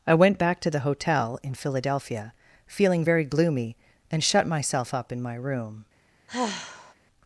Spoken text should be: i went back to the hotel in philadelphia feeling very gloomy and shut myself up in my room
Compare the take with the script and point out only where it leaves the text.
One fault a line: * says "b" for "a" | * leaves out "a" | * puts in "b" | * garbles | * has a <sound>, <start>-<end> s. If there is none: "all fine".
* has a sigh, 6.3-6.9 s